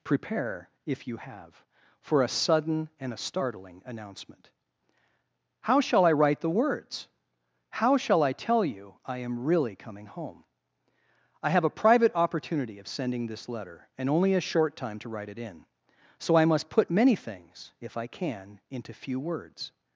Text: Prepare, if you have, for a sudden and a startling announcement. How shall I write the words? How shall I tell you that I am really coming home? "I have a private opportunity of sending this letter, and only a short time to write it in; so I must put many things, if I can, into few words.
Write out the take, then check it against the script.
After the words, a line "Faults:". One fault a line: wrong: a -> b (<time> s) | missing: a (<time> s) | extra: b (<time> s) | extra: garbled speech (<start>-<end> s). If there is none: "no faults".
Prepare, if you have, for a sudden and a startling announcement. How shall I write the words? How shall I tell you I am really coming home? "I have a private opportunity of sending this letter, and only a short time to write it in; so I must put many things, if I can, into few words.
Faults:
missing: that (8.9 s)